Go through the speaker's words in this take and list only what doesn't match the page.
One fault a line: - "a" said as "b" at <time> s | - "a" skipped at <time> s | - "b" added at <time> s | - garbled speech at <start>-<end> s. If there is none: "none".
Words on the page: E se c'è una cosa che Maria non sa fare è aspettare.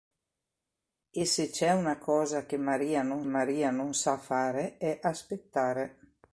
- "Maria non" added at 3.3 s